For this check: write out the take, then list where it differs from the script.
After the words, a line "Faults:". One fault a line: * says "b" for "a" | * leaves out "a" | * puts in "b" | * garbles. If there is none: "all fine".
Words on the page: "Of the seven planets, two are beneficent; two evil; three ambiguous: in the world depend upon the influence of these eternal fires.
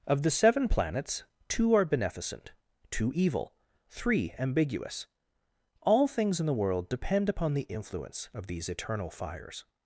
"Of the seven planets, two are beneficent; two evil; three ambiguous: all things in the world depend upon the influence of these eternal fires.
Faults:
* puts in "all things"